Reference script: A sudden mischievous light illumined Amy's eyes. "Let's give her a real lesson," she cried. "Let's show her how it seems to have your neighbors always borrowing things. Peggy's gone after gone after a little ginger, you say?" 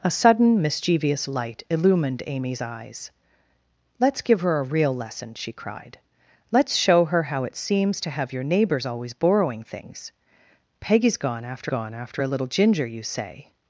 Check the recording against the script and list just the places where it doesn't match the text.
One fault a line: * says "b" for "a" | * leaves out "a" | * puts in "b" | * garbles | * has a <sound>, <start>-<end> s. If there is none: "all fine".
all fine